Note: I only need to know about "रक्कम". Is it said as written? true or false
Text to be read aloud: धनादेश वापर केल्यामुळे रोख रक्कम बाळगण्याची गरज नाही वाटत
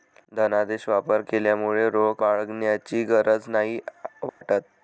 false